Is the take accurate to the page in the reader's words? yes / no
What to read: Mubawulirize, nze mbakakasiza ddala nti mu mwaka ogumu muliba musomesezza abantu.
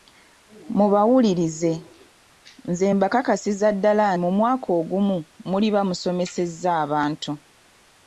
no